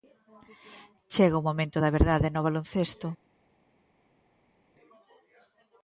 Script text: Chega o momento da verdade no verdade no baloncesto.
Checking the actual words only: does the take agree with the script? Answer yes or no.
no